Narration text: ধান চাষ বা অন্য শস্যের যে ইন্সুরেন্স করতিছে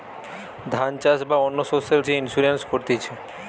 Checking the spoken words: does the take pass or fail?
pass